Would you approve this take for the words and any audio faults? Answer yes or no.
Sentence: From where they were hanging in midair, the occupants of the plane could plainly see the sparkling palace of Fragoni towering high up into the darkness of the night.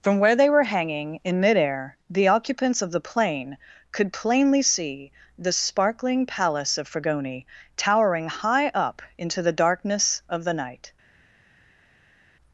yes